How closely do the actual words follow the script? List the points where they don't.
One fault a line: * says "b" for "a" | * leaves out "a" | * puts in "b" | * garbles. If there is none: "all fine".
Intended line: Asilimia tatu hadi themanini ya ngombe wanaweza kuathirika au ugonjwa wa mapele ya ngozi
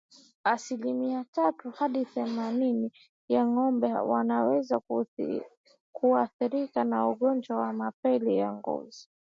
* says "na" for "au"